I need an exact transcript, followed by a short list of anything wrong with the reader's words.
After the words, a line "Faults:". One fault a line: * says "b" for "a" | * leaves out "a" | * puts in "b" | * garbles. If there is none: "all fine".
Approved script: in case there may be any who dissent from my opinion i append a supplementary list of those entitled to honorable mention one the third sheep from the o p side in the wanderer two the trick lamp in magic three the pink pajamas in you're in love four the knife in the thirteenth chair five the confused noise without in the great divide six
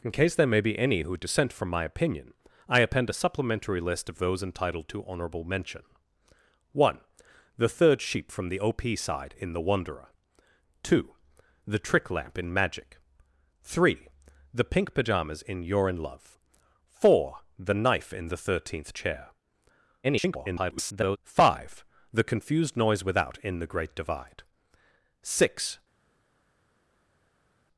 in case there may be any who dissent from my opinion i append a supplementary list of those entitled to honorable mention one the third sheep from the o p side in the wanderer two the trick lamp in magic three the pink pajamas in you're in love four the knife in the thirteenth chair [garbled] five the confused noise without in the great divide six
Faults:
* garbles